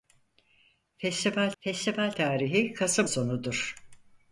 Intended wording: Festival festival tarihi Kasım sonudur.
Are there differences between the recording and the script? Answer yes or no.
no